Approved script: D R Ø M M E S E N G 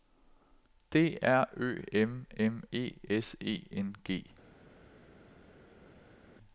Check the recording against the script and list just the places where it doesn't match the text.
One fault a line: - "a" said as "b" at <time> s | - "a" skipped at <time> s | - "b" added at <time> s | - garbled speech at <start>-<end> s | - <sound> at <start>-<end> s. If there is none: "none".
none